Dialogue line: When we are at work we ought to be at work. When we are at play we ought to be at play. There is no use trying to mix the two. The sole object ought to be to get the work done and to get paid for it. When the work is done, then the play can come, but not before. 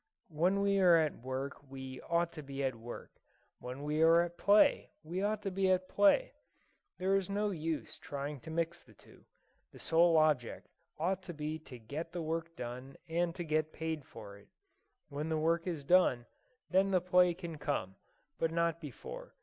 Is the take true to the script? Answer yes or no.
yes